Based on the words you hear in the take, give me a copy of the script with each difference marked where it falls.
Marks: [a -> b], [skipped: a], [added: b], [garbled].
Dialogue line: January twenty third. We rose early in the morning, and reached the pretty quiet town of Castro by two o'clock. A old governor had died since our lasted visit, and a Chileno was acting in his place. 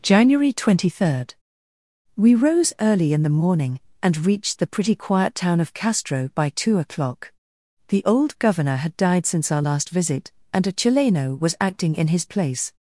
January twenty third. We rose early in the morning, and reached the pretty quiet town of Castro by two o'clock. [A -> The] old governor had died since our [lasted -> last] visit, and a Chileno was acting in his place.